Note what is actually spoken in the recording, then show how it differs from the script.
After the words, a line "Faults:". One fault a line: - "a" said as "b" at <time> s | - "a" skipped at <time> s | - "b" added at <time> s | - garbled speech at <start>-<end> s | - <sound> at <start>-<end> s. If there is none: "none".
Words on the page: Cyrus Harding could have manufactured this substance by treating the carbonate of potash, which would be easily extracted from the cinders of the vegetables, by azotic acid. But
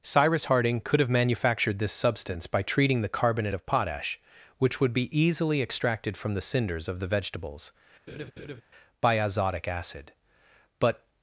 Cyrus Harding could have manufactured this substance by treating the carbonate of potash, which would be easily extracted from the cinders of the vegetables, by azotic acid. But
Faults:
- laugh at 8.1-8.6 s